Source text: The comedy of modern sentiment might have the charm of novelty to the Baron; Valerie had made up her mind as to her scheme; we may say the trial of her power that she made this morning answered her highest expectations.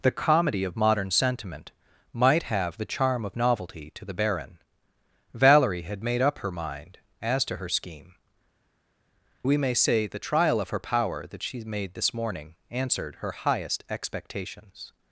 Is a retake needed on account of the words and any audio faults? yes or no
no